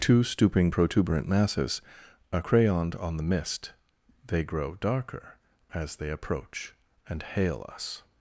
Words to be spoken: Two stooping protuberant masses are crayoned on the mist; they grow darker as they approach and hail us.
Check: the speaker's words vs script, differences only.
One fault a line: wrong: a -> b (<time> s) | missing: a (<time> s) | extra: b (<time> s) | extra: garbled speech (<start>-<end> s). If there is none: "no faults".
no faults